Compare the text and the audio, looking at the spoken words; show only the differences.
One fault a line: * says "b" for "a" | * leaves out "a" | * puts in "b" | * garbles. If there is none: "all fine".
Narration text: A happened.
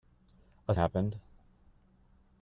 all fine